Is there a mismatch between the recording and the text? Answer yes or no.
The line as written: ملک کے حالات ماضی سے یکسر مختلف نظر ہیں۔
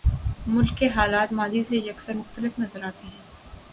yes